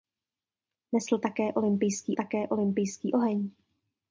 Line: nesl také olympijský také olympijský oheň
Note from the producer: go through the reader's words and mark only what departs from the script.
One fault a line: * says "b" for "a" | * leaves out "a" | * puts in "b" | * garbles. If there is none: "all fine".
all fine